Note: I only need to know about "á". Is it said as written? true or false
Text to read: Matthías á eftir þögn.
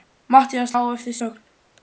true